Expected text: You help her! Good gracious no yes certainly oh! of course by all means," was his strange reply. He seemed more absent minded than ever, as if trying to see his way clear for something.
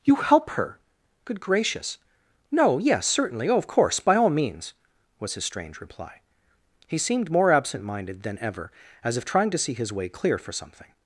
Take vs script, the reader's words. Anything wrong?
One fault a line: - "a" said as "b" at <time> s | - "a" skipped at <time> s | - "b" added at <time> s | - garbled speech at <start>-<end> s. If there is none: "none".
none